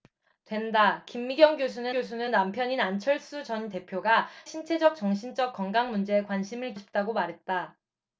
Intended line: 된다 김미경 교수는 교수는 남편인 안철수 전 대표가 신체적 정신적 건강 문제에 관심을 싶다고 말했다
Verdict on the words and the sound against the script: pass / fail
pass